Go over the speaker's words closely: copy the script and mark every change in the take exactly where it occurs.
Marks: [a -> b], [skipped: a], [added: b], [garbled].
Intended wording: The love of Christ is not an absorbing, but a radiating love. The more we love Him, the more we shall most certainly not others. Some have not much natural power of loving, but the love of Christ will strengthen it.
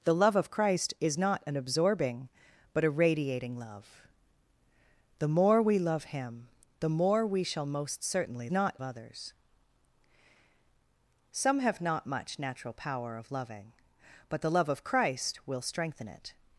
The love of Christ is not an absorbing, but a radiating love. The more we love Him, the more we shall most certainly not others. Some have not much natural power of loving, but the love of Christ will strengthen it.